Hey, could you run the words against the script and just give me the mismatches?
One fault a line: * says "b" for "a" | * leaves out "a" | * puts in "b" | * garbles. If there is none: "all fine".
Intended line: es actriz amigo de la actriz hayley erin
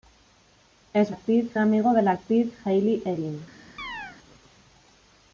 all fine